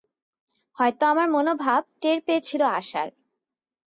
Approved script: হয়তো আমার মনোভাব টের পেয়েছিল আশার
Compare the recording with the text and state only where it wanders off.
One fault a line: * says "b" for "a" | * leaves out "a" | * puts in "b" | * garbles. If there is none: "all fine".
all fine